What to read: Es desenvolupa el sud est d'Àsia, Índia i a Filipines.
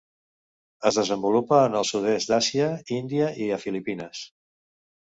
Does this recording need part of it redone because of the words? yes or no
yes